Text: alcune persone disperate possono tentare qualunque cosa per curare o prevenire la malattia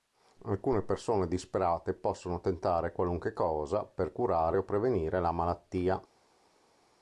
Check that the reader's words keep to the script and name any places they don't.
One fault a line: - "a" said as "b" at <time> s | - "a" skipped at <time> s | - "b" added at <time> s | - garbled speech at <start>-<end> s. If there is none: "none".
none